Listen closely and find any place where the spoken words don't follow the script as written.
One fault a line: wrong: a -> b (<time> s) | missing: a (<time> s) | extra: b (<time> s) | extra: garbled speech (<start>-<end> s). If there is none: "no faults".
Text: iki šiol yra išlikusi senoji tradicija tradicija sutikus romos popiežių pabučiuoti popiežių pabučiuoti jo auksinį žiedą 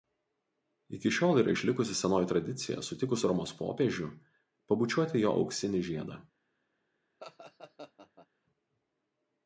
missing: tradicija (2.9 s)
missing: popiežių pabučiuoti (5.3 s)